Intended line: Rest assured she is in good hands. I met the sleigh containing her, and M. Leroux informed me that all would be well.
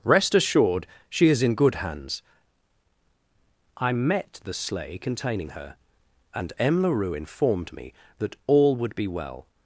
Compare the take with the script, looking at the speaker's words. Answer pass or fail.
pass